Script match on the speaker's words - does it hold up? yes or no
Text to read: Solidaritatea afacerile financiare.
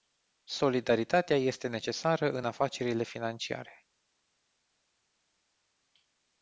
no